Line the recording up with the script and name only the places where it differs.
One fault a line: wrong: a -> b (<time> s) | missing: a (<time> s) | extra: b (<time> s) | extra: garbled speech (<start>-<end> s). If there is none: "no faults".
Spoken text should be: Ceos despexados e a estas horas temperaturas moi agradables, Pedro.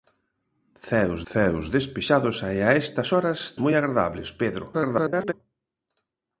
extra: ceos (1.3 s)
missing: temperaturas (3.4 s)
extra: garbled speech (4.7-5.3 s)